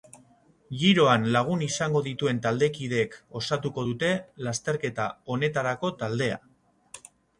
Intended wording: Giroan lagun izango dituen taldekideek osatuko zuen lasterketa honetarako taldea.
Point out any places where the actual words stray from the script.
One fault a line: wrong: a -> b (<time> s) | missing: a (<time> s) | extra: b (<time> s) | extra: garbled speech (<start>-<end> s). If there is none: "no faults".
wrong: zuen -> dute (3.9 s)